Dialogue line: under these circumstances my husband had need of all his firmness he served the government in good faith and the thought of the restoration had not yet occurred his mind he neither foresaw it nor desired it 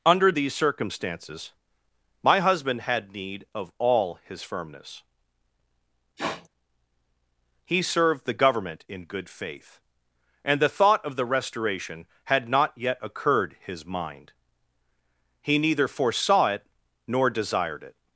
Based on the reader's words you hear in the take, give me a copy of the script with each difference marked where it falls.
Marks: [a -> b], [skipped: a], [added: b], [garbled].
under these circumstances my husband had need of all his firmness he served the government in good faith and the thought of the restoration had not yet occurred his mind he neither foresaw it nor desired it